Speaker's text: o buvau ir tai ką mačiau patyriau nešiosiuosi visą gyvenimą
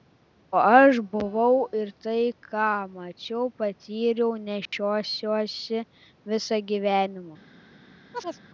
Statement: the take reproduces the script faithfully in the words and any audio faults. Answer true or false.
false